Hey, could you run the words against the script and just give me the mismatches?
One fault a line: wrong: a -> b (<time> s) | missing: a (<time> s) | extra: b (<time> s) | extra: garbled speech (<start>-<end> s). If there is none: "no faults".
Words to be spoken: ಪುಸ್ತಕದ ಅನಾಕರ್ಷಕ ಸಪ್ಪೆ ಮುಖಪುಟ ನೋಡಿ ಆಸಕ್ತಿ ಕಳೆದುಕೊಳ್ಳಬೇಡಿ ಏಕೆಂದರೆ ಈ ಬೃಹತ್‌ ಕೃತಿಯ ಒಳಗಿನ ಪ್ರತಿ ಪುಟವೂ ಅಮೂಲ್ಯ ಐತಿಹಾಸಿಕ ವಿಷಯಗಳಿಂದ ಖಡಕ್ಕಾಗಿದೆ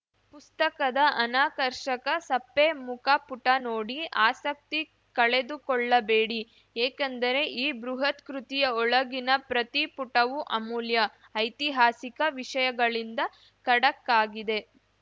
no faults